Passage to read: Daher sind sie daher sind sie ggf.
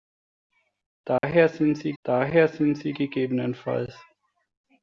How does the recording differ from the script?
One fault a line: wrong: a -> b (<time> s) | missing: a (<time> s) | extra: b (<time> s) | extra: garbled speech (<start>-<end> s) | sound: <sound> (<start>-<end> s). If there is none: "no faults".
sound: dropout (1.2-1.2 s)